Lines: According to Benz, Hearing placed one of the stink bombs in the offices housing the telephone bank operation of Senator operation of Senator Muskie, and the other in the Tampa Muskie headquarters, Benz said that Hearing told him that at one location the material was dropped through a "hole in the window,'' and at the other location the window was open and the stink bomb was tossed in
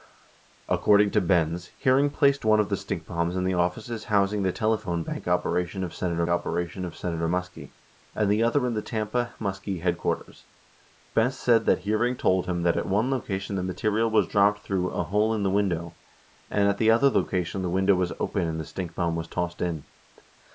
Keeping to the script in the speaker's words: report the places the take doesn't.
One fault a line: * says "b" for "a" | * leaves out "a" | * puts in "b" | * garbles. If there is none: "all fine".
all fine